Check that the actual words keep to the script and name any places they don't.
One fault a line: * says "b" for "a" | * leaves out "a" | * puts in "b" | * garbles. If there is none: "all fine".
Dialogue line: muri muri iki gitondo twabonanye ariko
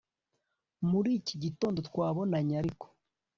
* leaves out "muri"